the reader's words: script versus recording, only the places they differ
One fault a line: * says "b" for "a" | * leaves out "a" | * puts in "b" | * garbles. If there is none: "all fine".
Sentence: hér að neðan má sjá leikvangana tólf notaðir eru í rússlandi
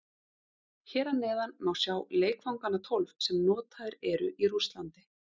* puts in "sem"